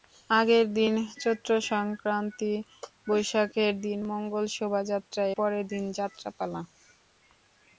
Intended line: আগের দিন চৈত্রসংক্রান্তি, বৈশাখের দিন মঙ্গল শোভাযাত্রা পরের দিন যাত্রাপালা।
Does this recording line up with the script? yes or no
yes